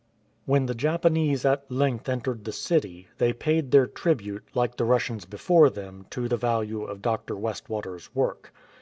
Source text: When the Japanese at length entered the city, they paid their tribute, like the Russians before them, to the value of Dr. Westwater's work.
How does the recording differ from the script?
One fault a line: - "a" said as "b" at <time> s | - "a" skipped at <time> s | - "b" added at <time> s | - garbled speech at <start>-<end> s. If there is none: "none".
none